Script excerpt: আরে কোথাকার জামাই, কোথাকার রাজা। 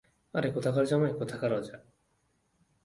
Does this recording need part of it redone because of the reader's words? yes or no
no